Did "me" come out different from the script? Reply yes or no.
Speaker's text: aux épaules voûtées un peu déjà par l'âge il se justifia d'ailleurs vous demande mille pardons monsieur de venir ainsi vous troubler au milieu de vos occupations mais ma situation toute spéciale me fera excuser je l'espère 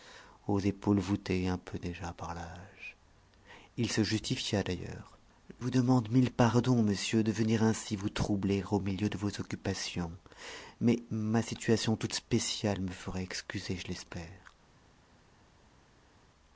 no